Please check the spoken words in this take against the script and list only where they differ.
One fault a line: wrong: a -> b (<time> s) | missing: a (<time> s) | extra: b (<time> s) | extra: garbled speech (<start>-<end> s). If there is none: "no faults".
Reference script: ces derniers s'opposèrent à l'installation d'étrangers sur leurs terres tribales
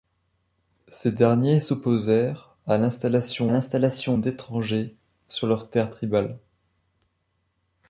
extra: l'installation (3.5 s)